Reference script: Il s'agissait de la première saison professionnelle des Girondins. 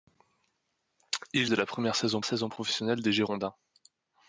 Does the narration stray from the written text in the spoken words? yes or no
yes